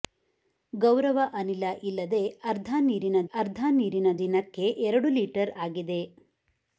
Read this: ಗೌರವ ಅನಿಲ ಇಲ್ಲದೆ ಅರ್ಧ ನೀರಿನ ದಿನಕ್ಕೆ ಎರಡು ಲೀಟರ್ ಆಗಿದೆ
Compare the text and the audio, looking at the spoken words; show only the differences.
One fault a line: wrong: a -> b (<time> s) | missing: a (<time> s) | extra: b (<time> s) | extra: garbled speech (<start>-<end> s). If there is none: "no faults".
extra: ಅರ್ಧ ನೀರಿನ (3.4 s)